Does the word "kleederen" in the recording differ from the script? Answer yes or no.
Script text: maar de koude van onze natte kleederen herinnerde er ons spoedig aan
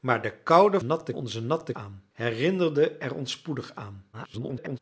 yes